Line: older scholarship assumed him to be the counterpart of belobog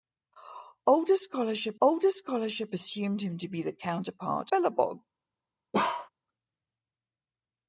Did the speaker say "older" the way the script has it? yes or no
yes